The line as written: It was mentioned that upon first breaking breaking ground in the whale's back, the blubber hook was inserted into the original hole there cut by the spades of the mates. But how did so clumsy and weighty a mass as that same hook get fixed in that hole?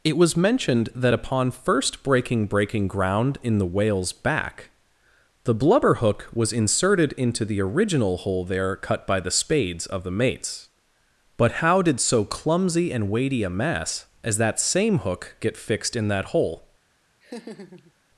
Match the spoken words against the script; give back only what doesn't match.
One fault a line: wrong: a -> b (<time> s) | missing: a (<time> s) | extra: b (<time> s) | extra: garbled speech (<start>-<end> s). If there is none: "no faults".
no faults